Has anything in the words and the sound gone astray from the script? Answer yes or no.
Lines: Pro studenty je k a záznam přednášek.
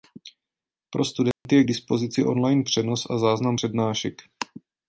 yes